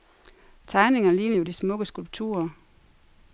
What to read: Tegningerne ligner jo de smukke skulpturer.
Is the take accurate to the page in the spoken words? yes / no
yes